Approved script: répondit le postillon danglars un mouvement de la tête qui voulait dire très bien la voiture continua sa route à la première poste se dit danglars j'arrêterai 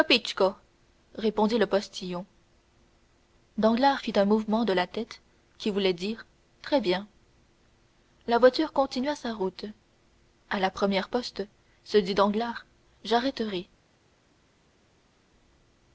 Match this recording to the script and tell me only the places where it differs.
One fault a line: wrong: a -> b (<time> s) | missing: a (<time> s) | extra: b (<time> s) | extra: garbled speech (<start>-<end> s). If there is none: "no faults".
extra: fit (4.0 s)